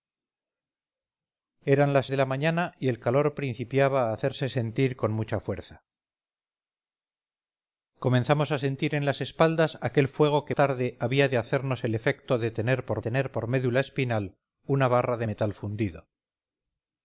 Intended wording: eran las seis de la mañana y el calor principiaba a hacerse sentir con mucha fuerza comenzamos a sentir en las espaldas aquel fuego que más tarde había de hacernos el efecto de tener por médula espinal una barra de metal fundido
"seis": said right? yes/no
no